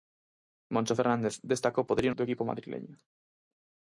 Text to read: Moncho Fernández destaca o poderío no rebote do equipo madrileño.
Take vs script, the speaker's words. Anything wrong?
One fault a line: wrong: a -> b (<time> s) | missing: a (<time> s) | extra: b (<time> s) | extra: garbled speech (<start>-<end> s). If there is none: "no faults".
missing: no rebote (2.1 s)